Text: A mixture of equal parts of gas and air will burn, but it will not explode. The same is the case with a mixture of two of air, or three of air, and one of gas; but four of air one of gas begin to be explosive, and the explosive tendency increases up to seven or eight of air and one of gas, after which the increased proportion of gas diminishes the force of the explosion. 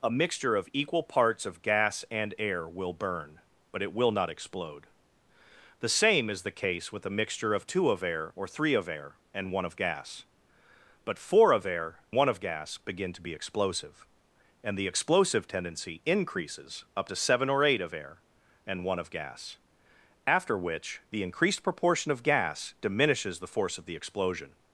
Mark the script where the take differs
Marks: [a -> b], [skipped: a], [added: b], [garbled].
A mixture of equal parts of gas and air will burn, but it will not explode. The same is the case with a mixture of two of air, or three of air, and one of gas; but four of air one of gas begin to be explosive, and the explosive tendency increases up to seven or eight of air and one of gas, after which the increased proportion of gas diminishes the force of the explosion.